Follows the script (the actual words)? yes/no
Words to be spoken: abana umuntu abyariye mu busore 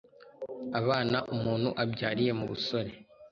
yes